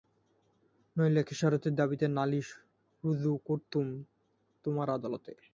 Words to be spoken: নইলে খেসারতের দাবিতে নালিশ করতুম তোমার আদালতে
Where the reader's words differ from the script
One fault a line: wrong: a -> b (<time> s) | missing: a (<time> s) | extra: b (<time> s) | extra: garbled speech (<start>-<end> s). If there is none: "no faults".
extra: রুজু (3.0 s)